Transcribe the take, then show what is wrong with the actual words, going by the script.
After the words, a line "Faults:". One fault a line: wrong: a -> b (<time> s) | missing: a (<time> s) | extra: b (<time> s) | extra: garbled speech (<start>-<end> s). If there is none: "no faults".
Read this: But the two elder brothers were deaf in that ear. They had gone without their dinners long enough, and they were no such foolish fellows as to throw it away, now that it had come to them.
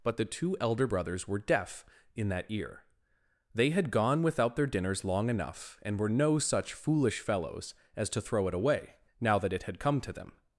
But the two elder brothers were deaf in that ear. They had gone without their dinners long enough, and were no such foolish fellows as to throw it away, now that it had come to them.
Faults:
missing: they (6.0 s)